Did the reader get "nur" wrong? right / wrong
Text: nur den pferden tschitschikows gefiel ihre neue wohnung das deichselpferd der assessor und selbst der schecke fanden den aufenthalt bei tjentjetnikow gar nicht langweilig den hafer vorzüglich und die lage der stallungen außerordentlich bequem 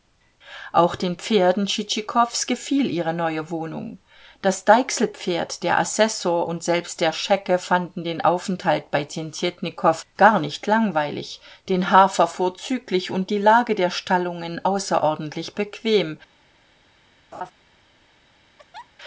wrong